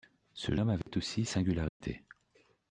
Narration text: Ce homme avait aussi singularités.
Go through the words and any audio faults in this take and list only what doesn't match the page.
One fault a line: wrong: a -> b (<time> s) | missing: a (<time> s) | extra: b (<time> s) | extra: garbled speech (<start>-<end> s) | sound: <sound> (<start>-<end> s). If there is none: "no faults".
sound: dropout (0.8-0.9 s)
sound: dropout (1.7-1.8 s)